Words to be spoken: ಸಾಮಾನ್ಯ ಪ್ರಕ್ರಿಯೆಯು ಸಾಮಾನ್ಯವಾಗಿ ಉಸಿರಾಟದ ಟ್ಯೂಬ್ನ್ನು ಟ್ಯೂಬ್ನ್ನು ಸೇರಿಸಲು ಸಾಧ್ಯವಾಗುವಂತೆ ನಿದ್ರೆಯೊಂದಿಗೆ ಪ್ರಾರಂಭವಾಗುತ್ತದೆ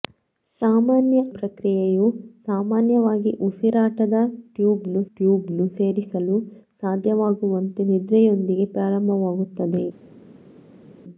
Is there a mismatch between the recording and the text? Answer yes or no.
no